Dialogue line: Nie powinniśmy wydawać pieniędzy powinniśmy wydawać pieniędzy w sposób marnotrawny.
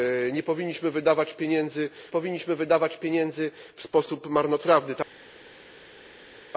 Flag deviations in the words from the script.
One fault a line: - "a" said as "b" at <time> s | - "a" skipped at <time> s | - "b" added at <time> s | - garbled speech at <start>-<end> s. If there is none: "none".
none